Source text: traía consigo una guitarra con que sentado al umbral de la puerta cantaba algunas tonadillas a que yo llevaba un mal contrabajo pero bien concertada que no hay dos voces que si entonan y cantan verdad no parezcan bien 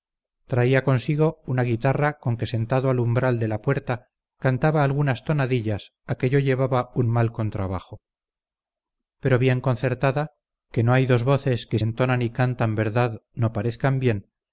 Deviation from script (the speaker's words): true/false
true